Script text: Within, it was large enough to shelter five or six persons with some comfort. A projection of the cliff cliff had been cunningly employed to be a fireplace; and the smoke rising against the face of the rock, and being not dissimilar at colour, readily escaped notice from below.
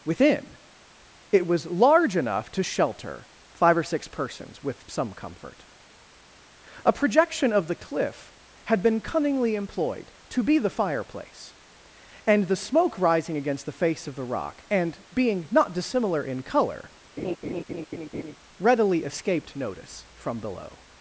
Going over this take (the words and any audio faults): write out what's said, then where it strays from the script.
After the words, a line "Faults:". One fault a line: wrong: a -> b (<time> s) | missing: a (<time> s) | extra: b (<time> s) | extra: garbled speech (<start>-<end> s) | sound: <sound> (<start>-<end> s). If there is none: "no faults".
Within, it was large enough to shelter five or six persons with some comfort. A projection of the cliff had been cunningly employed to be the fireplace; and the smoke rising against the face of the rock, and being not dissimilar in colour, readily escaped notice from below.
Faults:
missing: cliff (8.3 s)
wrong: a -> the (10.6 s)
wrong: at -> in (16.3 s)
sound: laugh (17.2-18.4 s)